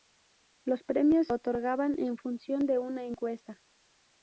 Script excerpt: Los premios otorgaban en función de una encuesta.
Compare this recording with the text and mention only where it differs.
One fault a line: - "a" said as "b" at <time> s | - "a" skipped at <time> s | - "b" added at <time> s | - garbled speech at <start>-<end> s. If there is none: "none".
none